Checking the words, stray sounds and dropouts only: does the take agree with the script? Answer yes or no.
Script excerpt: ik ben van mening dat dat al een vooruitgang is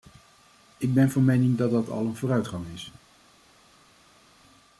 yes